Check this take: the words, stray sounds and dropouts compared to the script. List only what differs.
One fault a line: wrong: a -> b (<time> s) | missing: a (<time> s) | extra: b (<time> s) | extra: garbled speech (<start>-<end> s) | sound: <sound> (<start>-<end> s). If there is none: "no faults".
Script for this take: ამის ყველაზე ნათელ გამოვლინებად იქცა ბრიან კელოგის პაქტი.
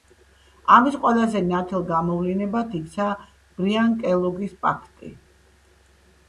no faults